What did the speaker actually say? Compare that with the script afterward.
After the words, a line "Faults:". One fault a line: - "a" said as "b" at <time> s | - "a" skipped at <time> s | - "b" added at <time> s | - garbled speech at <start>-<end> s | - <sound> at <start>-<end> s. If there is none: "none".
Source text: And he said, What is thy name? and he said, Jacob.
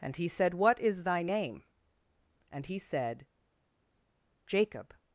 And he said, What is thy name? and he said, Jacob.
Faults:
none